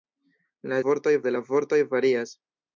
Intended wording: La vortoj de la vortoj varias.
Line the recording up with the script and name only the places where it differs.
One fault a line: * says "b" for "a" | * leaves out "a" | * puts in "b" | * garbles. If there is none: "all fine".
all fine